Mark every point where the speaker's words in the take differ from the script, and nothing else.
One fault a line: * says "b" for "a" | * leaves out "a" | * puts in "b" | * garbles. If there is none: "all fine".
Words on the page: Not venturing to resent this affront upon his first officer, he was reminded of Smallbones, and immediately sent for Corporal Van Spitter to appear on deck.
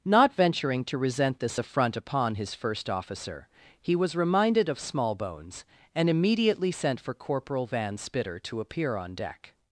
all fine